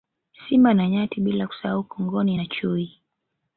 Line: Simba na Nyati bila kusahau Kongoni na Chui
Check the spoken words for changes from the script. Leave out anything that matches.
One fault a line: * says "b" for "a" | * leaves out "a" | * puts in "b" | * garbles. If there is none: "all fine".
all fine